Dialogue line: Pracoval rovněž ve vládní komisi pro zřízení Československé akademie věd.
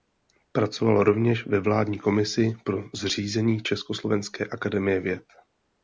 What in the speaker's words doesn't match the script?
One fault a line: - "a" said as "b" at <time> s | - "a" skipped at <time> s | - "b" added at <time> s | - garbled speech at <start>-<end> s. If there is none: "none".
none